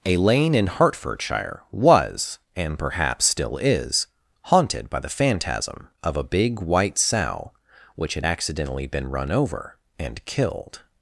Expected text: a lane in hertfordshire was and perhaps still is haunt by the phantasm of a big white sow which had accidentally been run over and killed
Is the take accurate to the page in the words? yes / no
no